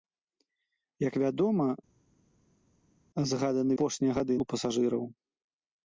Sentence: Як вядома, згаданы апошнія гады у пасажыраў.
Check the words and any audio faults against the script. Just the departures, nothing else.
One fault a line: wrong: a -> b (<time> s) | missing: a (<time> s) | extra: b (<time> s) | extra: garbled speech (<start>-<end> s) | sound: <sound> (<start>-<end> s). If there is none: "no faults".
no faults